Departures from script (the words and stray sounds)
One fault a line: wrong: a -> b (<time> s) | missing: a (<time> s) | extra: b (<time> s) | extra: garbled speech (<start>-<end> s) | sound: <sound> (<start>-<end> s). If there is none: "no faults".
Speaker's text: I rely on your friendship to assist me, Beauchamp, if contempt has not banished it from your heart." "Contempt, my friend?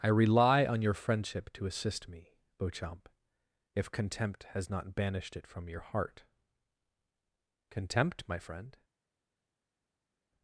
no faults